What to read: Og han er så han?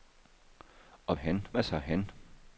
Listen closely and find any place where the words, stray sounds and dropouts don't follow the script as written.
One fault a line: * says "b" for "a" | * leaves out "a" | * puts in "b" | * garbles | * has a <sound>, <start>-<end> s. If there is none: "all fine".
all fine